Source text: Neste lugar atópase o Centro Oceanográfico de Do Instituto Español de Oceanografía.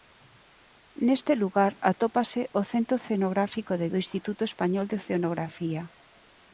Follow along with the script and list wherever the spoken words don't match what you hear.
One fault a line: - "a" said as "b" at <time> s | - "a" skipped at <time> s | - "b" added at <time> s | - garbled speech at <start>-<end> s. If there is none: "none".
none